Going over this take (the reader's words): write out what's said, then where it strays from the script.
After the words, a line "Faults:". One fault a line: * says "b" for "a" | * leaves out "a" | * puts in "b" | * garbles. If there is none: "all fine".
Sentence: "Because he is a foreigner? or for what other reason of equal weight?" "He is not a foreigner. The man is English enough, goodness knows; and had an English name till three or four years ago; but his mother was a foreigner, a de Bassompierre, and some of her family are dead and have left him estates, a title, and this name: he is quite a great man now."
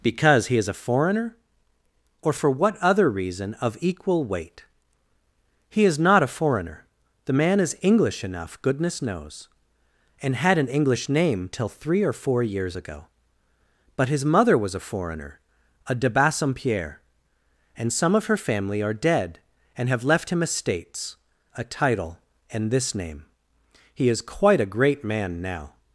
"Because he is a foreigner? or for what other reason of equal weight?" "He is not a foreigner. The man is English enough, goodness knows; and had an English name till three or four years ago; but his mother was a foreigner, a de Bassompierre, and some of her family are dead and have left him estates, a title, and this name: he is quite a great man now."
Faults:
all fine